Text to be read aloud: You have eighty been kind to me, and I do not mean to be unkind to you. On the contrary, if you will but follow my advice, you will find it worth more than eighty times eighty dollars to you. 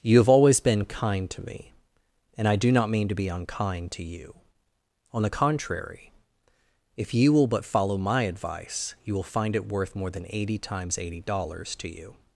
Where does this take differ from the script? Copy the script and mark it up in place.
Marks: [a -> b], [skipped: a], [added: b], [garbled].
You have [eighty -> always] been kind to me, and I do not mean to be unkind to you. On the contrary, if you will but follow my advice, you will find it worth more than eighty times eighty dollars to you.